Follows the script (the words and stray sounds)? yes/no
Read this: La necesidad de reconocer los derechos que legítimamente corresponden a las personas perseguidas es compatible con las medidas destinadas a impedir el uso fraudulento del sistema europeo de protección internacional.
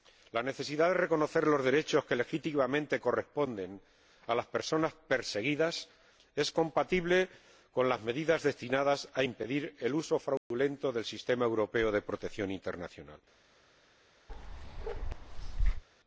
no